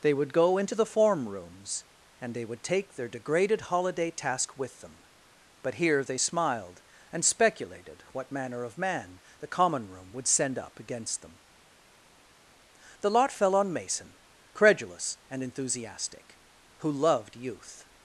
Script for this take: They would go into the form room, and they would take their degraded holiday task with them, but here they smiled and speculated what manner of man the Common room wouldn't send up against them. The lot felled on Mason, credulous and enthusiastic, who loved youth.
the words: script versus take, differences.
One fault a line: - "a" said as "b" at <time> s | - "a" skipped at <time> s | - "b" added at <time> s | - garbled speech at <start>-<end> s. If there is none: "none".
- "room" said as "rooms" at 1.3 s
- "wouldn't" said as "would" at 10.1 s
- "felled" said as "fell" at 13.3 s